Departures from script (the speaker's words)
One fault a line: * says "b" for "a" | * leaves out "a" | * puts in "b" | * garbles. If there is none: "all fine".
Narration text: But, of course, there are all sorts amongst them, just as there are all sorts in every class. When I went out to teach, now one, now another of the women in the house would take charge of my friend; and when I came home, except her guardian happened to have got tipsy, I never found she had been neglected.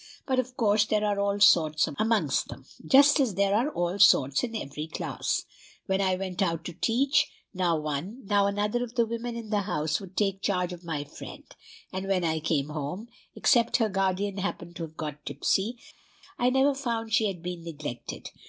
all fine